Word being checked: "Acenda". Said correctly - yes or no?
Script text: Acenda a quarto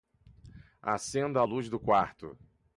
yes